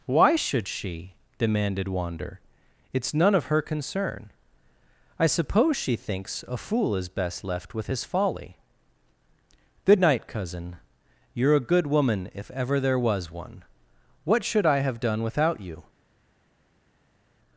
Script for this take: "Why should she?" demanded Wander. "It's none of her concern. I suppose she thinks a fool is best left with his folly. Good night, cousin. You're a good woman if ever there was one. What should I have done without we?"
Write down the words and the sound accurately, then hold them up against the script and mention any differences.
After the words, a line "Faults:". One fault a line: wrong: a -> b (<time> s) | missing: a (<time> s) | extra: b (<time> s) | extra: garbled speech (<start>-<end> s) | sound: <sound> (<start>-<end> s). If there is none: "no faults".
"Why should she?" demanded Wander. "It's none of her concern. I suppose she thinks a fool is best left with his folly. Good night, cousin. You're a good woman if ever there was one. What should I have done without you?"
Faults:
wrong: we -> you (15.6 s)